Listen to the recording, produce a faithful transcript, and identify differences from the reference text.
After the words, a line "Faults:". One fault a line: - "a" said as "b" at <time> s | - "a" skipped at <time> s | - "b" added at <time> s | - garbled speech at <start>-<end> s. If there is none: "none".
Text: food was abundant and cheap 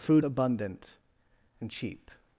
food abundant and cheap
Faults:
- "was" skipped at 0.2 s